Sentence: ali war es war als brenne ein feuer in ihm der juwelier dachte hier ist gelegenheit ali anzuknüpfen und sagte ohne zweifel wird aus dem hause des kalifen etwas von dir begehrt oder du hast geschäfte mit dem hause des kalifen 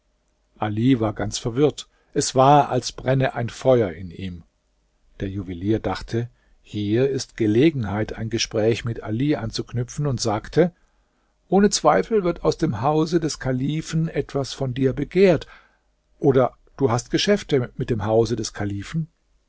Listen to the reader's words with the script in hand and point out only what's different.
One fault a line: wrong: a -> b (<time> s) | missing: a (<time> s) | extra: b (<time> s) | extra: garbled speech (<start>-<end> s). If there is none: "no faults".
extra: ganz verwirrt (1.1 s)
extra: ein gespräch mit (8.1 s)